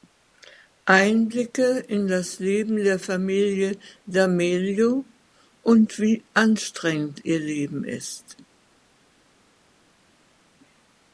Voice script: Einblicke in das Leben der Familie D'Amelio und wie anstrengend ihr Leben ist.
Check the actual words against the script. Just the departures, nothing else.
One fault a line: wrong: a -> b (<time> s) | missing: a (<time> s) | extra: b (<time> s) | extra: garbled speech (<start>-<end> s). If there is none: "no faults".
no faults